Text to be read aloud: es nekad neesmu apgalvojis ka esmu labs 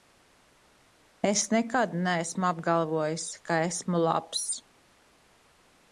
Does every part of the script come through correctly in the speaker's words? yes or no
yes